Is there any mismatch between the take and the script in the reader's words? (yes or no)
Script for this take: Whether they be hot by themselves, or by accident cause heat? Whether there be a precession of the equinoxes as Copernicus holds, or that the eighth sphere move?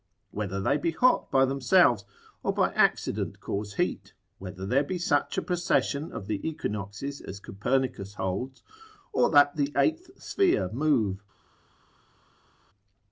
yes